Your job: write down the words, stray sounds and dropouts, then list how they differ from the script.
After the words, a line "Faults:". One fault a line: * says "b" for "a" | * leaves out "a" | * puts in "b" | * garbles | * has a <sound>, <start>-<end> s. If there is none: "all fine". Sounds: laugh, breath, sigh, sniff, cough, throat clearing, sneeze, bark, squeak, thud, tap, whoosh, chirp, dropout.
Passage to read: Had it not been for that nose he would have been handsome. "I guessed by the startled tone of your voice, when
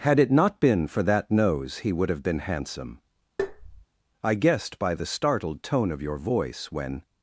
Had it not been for that nose he would have been handsome. "I guessed by the startled tone of your voice, when
Faults:
* has a tap, 3.4-3.9 s